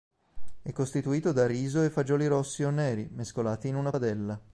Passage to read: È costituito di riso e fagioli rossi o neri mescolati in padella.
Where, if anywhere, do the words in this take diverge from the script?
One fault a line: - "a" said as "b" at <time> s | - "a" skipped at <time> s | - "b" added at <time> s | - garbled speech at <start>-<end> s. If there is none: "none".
- "di" said as "da" at 1.3 s
- "una" added at 3.7 s